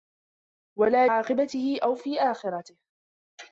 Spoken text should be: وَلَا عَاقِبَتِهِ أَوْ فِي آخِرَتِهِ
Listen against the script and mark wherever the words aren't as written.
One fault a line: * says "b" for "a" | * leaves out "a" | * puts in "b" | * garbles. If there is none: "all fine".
all fine